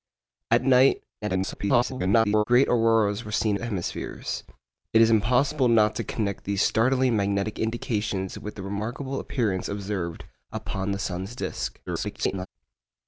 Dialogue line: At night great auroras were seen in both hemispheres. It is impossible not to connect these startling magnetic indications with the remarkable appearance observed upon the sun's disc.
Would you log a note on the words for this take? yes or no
yes